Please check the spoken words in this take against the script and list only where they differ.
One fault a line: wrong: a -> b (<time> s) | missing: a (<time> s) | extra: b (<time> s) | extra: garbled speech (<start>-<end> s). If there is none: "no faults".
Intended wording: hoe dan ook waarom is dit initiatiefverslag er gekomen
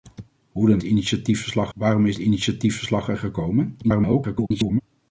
wrong: ook -> initiatiefverslag (0.8 s)
missing: dit (2.2 s)
extra: garbled speech (3.8-4.8 s)